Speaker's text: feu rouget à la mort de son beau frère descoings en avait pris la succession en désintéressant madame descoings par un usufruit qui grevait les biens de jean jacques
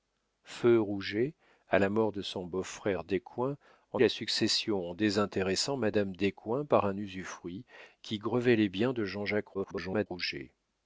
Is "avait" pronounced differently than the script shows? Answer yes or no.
yes